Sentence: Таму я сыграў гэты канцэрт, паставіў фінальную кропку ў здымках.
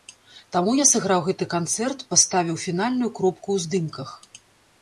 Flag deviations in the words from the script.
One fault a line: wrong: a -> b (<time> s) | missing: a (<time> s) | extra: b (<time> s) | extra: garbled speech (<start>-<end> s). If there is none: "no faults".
no faults